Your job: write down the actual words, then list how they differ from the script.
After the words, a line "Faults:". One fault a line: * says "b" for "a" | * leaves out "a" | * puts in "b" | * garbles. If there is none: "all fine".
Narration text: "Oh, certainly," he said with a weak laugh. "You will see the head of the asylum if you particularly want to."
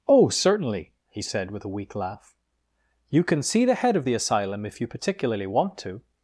"Oh, certainly," he said with a weak laugh. "You can see the head of the asylum if you particularly want to."
Faults:
* says "can" for "will"